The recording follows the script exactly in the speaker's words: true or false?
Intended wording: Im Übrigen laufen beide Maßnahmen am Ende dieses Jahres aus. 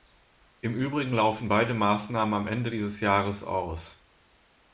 true